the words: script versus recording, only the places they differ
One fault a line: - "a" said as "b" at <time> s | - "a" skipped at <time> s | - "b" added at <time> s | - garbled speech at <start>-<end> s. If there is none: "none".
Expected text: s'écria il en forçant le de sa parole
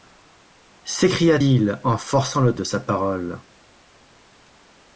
none